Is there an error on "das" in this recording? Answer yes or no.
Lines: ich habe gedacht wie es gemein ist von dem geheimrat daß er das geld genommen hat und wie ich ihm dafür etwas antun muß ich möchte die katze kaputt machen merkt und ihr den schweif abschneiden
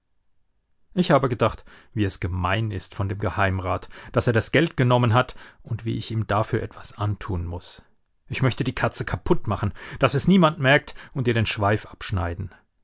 no